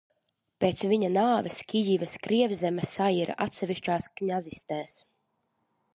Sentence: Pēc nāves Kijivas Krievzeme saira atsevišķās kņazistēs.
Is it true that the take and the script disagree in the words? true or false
true